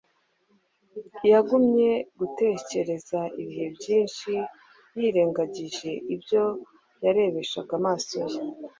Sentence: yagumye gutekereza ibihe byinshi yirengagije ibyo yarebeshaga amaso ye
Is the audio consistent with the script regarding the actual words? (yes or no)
yes